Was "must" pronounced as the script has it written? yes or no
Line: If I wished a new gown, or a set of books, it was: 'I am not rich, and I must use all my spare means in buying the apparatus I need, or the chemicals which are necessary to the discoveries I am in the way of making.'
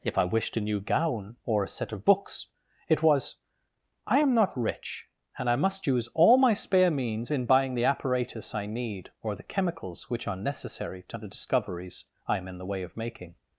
yes